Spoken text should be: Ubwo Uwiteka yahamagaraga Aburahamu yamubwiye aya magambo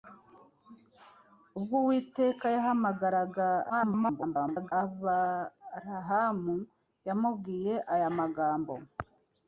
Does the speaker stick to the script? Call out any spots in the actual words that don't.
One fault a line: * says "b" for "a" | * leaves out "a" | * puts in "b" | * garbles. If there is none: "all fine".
* garbles